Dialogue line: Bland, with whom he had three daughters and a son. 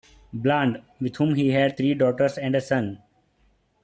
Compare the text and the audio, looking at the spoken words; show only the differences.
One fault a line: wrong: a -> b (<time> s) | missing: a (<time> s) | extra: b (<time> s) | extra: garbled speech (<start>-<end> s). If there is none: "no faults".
no faults